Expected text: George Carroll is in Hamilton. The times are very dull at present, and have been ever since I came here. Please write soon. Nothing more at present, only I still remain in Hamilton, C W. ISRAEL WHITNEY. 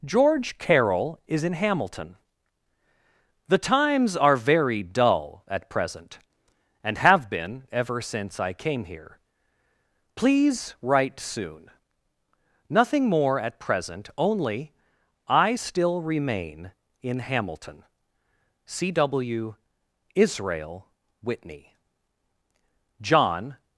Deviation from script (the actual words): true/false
true